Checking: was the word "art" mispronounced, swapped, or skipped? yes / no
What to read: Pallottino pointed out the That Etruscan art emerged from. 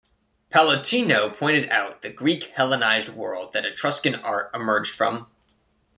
no